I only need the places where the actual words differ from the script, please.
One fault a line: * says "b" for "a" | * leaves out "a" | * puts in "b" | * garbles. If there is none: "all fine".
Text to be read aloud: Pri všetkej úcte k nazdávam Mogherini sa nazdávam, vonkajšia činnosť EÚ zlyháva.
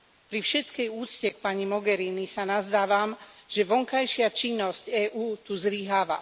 * says "pani" for "nazdávam"
* puts in "že"
* puts in "tu"